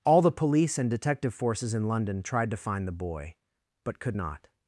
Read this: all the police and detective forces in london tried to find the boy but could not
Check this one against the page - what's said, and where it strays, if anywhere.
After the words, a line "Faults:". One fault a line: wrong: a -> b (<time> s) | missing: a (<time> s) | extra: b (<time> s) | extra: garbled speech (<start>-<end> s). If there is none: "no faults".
all the police and detective forces in london tried to find the boy but could not
Faults:
no faults